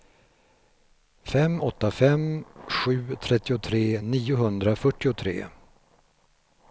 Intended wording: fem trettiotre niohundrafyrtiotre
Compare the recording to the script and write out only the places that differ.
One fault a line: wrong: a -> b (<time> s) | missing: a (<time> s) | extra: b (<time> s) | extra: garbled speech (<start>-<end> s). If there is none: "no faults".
extra: åtta fem sju (1.6 s)